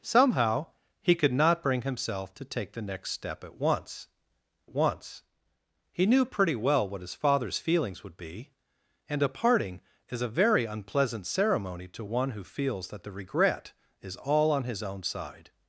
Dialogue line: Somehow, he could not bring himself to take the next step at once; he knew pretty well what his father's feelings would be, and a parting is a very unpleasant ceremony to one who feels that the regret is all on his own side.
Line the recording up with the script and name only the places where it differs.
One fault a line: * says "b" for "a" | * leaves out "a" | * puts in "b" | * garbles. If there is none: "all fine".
* puts in "once"